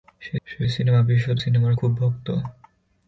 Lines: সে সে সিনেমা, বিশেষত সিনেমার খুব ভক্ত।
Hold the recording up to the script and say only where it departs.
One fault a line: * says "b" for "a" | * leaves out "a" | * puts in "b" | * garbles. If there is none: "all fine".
all fine